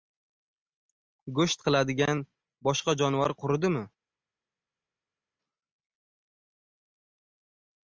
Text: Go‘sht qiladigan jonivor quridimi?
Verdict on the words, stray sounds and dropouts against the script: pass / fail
fail